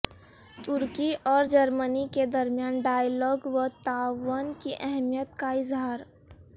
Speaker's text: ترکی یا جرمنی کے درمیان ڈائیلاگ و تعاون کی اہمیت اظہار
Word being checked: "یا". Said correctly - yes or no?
no